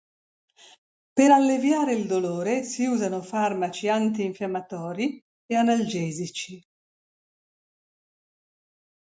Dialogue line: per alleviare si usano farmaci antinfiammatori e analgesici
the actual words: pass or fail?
fail